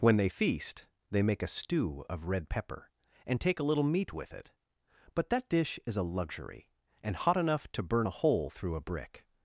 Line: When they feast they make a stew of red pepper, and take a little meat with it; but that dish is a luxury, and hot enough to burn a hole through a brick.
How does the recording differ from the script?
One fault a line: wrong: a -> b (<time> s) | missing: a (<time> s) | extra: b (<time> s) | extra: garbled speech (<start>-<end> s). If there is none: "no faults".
no faults